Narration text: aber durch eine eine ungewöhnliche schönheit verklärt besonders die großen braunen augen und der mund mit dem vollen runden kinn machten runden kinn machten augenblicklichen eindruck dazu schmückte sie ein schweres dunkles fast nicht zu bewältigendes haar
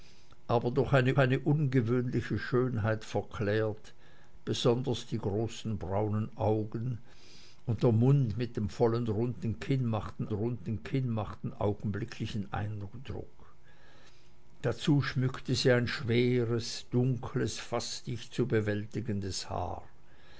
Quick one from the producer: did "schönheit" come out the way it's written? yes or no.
yes